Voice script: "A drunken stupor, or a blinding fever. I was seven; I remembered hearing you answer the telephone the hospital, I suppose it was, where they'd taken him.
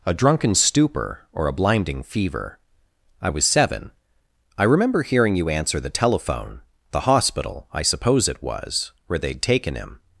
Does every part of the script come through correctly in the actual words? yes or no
no